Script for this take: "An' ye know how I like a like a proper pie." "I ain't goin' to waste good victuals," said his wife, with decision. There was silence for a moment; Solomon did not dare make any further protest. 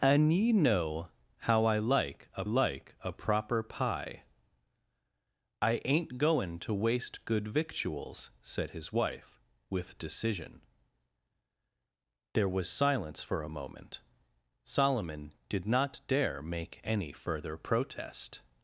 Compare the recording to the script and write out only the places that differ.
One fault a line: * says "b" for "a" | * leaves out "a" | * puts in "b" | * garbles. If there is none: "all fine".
all fine